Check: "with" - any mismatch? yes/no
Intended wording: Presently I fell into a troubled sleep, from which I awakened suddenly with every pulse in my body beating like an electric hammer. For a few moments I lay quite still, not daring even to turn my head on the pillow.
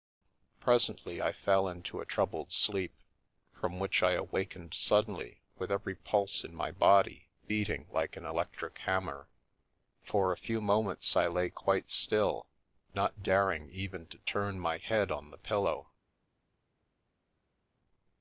no